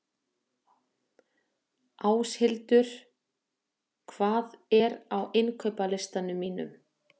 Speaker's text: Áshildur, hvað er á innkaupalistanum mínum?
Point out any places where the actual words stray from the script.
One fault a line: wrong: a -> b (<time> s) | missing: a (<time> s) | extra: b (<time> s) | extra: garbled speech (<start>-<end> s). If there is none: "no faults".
no faults